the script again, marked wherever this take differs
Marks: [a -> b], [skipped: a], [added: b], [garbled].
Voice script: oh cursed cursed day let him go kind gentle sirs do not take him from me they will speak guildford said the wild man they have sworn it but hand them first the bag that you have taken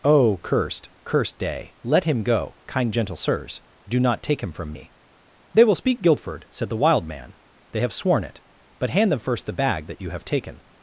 oh cursed cursed day let him go kind gentle sirs do not take him from me they will speak guildford said the wild man they have sworn it but hand them first the bag that you have taken